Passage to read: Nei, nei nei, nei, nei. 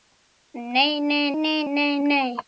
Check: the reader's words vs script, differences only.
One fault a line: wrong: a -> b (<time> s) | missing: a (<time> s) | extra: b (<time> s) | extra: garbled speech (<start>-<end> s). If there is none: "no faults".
no faults